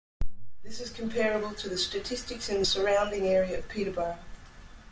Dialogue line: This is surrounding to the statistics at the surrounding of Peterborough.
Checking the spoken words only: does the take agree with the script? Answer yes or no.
no